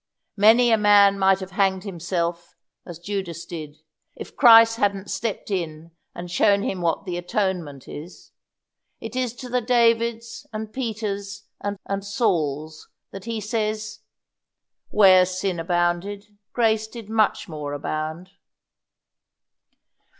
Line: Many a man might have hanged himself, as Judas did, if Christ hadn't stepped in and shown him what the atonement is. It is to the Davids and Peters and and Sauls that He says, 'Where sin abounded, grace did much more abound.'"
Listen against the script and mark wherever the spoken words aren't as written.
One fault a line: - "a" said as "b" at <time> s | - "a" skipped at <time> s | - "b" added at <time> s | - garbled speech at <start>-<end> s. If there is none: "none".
none